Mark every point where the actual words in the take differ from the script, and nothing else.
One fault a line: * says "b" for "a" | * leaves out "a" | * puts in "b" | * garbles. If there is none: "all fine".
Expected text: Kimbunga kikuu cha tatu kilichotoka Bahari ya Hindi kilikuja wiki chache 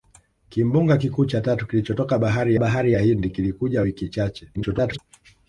* puts in "Bahari"
* garbles